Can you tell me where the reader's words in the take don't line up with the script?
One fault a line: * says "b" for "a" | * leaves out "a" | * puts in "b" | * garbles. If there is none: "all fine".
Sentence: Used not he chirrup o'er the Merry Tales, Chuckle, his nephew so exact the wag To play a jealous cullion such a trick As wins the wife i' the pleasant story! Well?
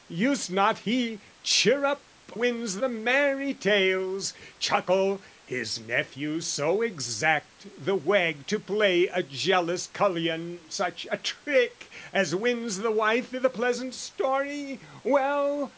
* says "wins" for "o'er"